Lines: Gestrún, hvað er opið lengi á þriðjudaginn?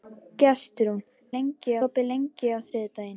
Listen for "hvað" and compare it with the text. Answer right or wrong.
wrong